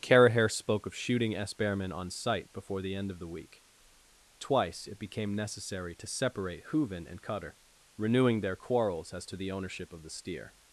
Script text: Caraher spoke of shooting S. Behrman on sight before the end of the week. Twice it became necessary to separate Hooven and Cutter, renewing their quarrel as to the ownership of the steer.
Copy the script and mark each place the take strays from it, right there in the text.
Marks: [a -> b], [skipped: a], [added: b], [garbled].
Caraher spoke of shooting S. Behrman on sight before the end of the week. Twice it became necessary to separate Hooven and Cutter, renewing their [quarrel -> quarrels] as to the ownership of the steer.